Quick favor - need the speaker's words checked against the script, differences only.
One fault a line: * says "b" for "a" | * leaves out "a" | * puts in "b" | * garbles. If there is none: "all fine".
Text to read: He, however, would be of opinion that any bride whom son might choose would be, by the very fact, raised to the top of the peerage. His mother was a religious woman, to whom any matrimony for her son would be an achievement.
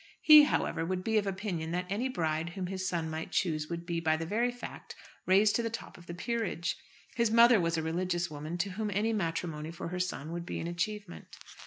* puts in "his"